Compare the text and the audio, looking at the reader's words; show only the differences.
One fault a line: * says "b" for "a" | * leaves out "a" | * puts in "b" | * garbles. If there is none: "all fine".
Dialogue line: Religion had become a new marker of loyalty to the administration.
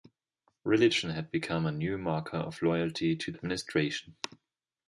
* leaves out "the"